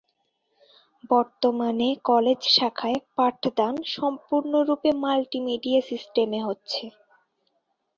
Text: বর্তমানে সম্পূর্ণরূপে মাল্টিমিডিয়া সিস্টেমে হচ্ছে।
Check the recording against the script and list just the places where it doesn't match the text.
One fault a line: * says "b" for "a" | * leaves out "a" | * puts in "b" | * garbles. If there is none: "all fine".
* puts in "কলেজ শাখায় পাঠদান"